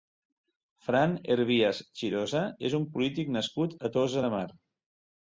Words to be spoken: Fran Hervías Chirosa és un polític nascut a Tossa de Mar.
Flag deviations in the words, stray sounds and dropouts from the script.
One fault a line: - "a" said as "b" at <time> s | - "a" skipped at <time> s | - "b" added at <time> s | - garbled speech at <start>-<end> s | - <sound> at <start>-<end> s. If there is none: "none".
none